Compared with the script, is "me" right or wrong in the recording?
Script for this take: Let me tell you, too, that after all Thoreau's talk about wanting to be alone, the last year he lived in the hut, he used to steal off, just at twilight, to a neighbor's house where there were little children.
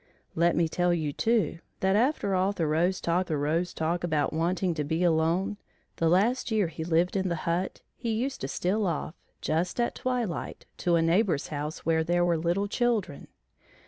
right